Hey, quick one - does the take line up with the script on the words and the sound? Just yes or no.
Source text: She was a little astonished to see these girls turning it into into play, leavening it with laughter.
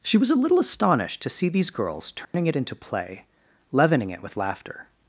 no